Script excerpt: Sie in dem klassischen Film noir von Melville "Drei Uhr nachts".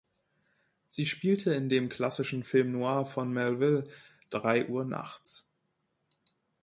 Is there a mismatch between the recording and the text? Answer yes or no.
yes